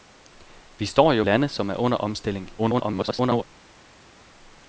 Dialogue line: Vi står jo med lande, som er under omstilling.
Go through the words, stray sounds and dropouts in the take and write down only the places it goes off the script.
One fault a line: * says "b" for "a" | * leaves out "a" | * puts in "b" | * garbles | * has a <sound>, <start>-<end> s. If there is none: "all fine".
* leaves out "med"
* garbles